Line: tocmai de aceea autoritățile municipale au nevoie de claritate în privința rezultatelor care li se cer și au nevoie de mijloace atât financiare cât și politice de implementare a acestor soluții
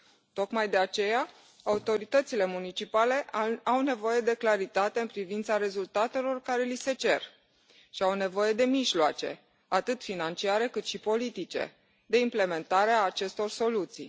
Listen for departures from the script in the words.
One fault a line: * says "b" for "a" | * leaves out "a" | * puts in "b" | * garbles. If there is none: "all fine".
all fine